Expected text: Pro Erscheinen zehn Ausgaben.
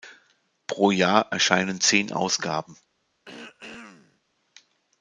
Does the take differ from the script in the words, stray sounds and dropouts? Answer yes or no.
yes